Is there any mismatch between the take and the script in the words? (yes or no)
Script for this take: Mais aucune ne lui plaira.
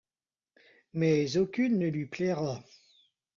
no